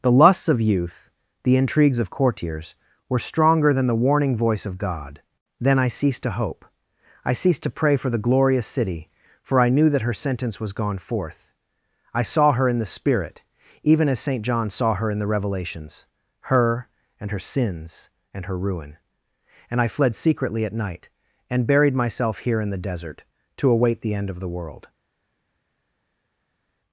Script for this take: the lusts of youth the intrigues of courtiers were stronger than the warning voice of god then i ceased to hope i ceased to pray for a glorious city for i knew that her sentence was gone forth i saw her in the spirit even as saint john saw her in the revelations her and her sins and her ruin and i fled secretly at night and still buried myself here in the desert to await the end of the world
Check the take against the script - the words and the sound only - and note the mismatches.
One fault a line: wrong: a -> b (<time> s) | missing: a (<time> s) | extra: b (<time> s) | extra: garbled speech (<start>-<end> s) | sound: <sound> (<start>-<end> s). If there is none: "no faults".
wrong: a -> the (8.1 s)
missing: still (21.7 s)